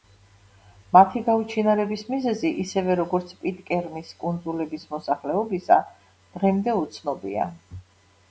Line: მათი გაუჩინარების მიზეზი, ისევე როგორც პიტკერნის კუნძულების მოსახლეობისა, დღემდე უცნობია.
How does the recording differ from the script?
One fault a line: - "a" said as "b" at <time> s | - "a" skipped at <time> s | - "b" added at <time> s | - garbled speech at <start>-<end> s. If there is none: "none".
none